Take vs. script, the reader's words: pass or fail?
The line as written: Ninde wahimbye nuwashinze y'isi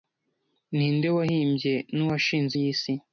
pass